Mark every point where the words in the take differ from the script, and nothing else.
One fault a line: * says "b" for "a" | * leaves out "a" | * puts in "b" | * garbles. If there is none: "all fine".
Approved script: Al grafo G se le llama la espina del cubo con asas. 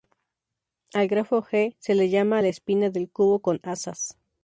all fine